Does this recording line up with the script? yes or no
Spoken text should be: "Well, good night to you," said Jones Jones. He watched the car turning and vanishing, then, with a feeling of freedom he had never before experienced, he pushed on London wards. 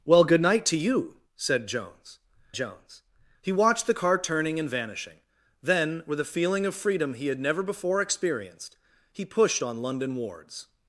yes